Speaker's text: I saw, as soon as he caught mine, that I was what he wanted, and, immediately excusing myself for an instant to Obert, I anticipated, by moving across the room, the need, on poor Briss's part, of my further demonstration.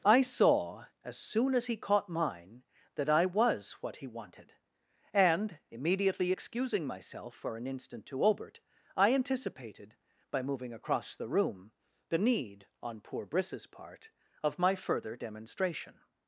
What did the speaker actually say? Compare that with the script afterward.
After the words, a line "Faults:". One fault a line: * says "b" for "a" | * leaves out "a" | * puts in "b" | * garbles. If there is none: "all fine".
I saw, as soon as he caught mine, that I was what he wanted, and, immediately excusing myself for an instant to Obert, I anticipated, by moving across the room, the need, on poor Briss's part, of my further demonstration.
Faults:
all fine